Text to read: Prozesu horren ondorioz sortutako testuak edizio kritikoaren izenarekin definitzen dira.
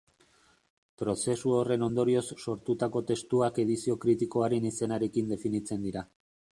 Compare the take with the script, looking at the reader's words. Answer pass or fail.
pass